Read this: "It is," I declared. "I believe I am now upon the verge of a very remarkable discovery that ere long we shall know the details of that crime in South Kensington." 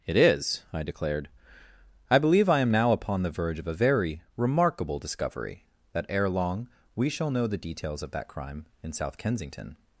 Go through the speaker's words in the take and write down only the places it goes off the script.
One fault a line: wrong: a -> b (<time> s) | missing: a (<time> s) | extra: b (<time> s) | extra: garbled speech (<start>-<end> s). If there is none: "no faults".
no faults